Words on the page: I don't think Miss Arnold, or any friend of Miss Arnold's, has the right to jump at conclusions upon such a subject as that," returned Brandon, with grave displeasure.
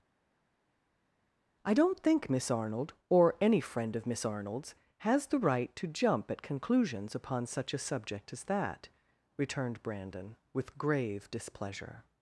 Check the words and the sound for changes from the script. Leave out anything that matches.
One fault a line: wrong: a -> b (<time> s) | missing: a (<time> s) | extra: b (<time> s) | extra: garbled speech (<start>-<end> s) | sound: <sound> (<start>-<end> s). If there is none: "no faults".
no faults